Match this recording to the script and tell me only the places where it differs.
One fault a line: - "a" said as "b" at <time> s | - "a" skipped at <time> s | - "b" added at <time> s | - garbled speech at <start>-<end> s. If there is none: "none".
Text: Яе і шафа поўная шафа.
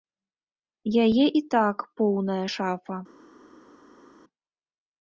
- "шафа" said as "так" at 1.5 s